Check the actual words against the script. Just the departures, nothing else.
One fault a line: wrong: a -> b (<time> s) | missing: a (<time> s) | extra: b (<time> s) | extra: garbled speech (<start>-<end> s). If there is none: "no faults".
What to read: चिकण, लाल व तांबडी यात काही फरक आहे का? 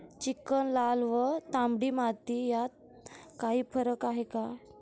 extra: माती (1.9 s)